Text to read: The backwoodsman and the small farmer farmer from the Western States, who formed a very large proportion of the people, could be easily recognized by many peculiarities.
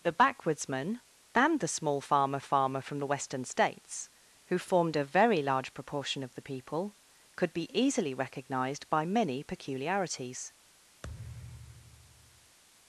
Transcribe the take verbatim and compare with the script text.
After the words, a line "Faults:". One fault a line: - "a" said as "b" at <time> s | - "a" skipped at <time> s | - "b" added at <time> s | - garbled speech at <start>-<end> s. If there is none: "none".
The backwoodsman and the small farmer farmer from the Western States, who formed a very large proportion of the people, could be easily recognized by many peculiarities.
Faults:
none